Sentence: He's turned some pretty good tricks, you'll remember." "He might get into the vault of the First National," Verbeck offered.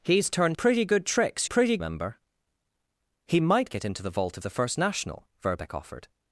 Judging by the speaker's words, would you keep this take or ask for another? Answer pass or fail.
fail